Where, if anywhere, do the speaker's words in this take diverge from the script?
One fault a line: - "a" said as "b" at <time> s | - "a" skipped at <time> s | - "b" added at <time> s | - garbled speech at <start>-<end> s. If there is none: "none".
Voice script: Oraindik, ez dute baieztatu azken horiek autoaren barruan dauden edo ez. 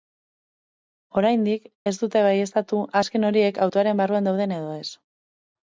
none